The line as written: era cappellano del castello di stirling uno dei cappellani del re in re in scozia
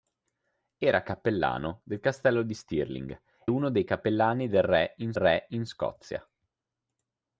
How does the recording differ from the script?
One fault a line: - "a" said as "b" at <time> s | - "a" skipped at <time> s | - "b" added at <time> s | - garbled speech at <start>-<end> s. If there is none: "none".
none